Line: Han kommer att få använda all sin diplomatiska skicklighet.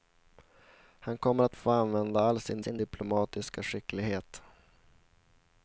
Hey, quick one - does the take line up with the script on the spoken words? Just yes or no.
no